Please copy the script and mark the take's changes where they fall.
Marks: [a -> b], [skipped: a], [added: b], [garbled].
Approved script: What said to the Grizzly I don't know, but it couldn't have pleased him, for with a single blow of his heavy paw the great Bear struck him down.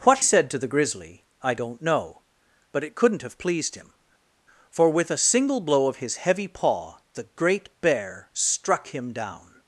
What said to the Grizzly I don't know, but it couldn't have pleased him, for with a single blow of his heavy paw the great Bear struck him down.